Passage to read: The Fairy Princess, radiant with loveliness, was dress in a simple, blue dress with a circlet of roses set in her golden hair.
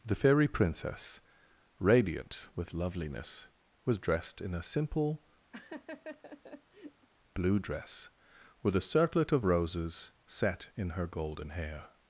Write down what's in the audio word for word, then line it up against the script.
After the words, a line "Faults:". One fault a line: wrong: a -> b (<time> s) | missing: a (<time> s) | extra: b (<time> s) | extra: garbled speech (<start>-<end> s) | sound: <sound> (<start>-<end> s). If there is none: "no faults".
The Fairy Princess, radiant with loveliness, was dressed in a simple, blue dress with a circlet of roses set in her golden hair.
Faults:
wrong: dress -> dressed (4.0 s)
sound: laugh (5.5-7.1 s)